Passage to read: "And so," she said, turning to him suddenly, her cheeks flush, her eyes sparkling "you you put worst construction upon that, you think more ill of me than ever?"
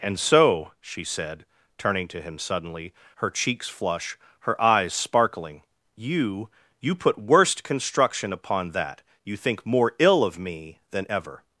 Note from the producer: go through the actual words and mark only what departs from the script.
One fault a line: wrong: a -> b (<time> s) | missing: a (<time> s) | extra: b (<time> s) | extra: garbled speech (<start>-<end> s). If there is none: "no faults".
no faults